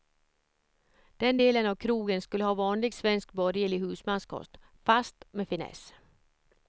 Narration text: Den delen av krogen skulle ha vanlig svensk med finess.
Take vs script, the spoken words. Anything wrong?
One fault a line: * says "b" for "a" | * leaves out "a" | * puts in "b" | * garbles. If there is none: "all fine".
* puts in "borgerlig husmanskost fast"